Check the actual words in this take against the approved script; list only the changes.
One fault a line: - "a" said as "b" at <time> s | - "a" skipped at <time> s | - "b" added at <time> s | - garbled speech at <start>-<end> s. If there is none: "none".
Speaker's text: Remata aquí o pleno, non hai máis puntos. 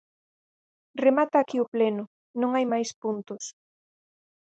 none